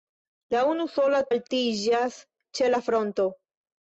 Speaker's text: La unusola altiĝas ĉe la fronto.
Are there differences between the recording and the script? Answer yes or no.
no